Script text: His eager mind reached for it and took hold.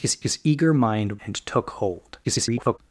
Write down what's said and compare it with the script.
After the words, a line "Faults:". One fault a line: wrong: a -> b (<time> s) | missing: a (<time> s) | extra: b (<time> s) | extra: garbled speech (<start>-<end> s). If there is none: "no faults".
His his eager mind and took hold. [garbled]
Faults:
extra: his (0.2 s)
missing: reached for it (1.2 s)
extra: garbled speech (2.2-2.8 s)